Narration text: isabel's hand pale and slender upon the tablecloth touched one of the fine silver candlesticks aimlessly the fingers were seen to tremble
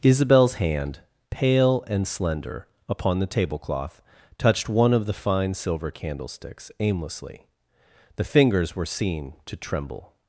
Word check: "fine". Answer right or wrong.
right